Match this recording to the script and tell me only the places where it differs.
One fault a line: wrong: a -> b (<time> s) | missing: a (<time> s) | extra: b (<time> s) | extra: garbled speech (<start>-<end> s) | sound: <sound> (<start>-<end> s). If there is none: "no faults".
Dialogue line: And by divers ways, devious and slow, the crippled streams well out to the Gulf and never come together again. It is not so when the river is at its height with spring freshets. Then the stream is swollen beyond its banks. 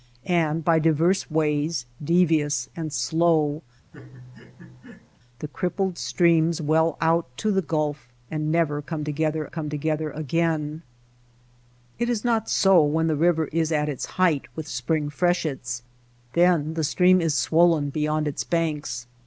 sound: laugh (3.9-5.2 s)
extra: come together (9.5 s)